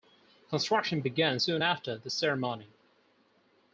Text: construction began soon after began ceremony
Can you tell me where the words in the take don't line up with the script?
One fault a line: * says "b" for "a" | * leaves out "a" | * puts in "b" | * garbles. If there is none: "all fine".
* says "the" for "began"